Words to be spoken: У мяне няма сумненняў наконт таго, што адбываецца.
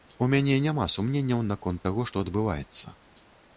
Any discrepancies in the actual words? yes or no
no